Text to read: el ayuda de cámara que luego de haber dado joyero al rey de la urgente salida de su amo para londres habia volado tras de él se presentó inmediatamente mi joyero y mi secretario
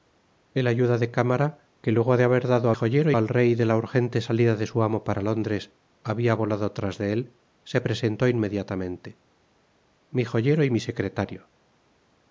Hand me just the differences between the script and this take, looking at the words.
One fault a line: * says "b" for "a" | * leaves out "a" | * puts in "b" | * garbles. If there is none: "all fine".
all fine